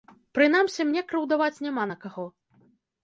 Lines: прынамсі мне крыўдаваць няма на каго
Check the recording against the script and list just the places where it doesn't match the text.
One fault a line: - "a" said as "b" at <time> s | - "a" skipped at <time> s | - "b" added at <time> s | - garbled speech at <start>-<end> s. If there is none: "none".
none